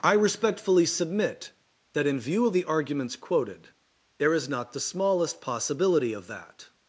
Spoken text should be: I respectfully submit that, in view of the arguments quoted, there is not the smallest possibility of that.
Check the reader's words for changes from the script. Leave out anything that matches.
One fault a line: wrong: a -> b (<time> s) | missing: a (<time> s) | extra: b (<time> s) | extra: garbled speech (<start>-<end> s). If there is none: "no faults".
no faults